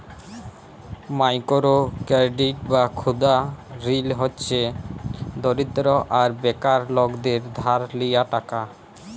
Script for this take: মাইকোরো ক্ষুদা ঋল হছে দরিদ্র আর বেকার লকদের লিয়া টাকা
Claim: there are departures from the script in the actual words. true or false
true